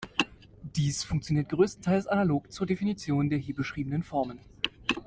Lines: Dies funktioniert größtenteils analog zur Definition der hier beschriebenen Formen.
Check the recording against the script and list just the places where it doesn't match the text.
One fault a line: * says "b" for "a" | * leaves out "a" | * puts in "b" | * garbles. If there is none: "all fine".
all fine